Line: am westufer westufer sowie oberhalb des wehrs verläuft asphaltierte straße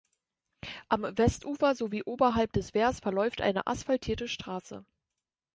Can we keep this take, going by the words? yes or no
no